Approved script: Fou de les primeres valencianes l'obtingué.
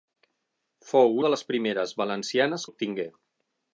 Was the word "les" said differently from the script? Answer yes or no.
no